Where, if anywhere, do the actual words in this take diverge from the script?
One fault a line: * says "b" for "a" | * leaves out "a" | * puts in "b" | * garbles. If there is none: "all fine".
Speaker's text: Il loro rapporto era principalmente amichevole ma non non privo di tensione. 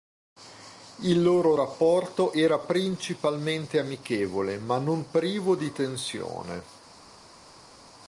* leaves out "non"